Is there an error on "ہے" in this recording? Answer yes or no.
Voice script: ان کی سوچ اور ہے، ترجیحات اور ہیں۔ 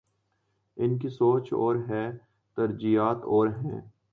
no